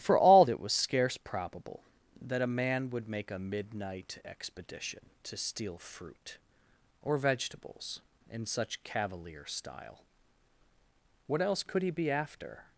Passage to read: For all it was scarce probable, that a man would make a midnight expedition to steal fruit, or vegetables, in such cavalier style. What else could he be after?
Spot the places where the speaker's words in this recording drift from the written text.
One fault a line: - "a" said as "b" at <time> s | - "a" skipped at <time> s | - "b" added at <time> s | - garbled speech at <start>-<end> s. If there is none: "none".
none